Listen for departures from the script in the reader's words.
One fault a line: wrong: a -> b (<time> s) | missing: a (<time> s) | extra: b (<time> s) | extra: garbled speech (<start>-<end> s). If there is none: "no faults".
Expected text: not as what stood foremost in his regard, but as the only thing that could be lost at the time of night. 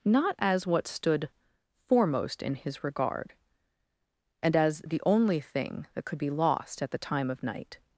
wrong: but -> and (4.4 s)